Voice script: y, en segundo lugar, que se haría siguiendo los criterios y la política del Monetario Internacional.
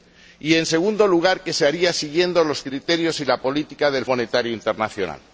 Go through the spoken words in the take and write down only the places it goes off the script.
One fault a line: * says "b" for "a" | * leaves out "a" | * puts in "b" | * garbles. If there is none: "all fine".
all fine